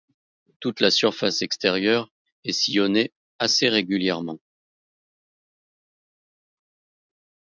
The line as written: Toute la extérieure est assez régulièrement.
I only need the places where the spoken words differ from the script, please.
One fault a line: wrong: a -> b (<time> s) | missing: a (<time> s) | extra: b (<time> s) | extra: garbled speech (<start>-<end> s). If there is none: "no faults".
extra: surface (0.9 s)
extra: sillonnée (2.5 s)